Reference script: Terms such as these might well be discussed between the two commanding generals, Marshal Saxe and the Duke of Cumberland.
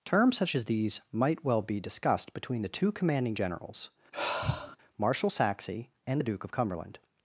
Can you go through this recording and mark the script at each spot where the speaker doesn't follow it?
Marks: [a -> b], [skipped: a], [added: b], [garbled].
Terms such as these might well be discussed between the two commanding generals, Marshal Saxe and the Duke of Cumberland.